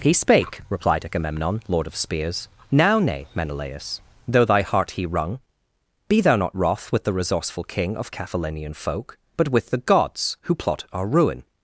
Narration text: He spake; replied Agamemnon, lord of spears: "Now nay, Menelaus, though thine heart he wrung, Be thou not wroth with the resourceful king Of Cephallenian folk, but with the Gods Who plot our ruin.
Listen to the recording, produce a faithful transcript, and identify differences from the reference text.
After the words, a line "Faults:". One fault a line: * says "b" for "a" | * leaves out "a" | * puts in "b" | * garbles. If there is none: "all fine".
He spake; replied Agamemnon, lord of spears: "Now nay, Menelaus, though thy heart he wrung, Be thou not wroth with the resourceful king Of Cephallenian folk, but with the Gods Who plot our ruin.
Faults:
* says "thy" for "thine"